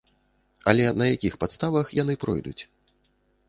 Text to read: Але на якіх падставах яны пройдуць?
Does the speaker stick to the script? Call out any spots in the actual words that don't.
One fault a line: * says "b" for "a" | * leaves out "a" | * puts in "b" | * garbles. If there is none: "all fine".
all fine